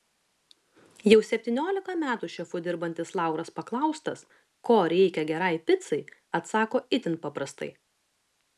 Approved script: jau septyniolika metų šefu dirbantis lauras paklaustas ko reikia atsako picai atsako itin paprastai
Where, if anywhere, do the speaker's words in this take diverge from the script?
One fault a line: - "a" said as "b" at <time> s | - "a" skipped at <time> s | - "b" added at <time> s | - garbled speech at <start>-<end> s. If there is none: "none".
- "atsako" said as "gerai" at 5.3 s